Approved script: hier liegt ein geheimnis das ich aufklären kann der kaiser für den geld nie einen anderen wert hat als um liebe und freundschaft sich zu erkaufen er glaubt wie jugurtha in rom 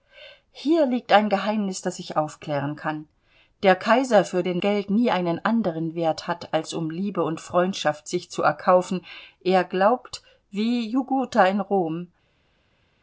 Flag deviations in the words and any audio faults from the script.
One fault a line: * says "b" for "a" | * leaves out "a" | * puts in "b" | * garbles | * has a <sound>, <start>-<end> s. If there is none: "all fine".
all fine